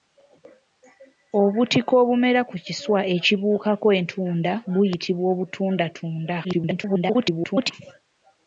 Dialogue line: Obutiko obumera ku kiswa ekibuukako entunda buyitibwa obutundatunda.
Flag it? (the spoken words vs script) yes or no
yes